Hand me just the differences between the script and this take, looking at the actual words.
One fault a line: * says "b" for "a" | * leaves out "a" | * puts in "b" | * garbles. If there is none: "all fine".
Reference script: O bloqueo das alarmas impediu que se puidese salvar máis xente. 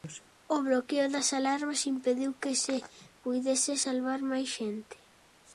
all fine